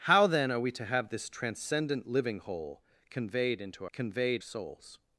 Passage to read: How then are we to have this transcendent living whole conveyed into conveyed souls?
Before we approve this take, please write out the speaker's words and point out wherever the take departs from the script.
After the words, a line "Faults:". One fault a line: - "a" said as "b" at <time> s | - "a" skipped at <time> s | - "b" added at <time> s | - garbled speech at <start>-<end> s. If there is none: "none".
How then are we to have this transcendent living whole conveyed into conveyed souls?
Faults:
none